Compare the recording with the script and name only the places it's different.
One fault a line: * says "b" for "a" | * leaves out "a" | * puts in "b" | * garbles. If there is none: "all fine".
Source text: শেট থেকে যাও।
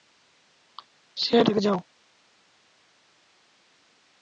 all fine